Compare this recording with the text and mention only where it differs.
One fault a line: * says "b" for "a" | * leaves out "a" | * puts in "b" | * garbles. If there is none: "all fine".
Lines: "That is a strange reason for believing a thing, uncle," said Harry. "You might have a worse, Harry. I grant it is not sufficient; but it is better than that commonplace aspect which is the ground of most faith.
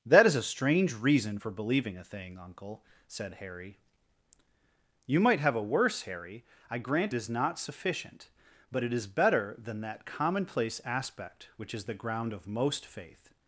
* leaves out "it"